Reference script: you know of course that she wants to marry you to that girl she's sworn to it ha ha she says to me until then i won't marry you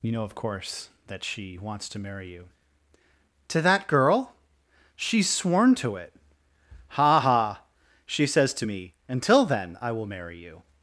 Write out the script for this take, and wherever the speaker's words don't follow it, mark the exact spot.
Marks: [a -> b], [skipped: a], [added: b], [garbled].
you know of course that she wants to marry you to that girl she's sworn to it ha ha she says to me until then i [won't -> will] marry you